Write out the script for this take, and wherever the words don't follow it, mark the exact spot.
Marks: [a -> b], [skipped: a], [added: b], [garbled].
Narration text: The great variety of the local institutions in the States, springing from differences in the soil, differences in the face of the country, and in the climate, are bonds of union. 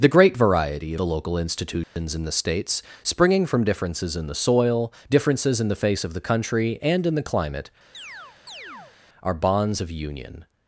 The great variety [skipped: of] the local institutions in the States, springing from differences in the soil, differences in the face of the country, and in the climate, are bonds of union.